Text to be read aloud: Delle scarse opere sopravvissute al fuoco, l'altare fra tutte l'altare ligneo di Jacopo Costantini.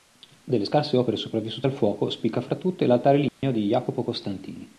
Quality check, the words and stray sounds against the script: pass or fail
fail